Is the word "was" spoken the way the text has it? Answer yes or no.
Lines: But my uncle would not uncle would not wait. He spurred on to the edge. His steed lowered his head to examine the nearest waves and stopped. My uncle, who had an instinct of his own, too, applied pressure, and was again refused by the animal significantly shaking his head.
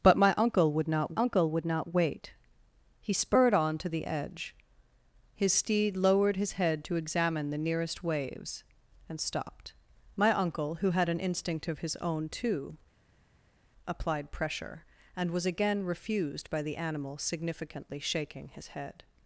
yes